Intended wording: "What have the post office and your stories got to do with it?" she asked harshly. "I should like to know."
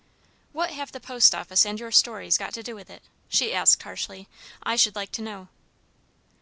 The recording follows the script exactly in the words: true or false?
true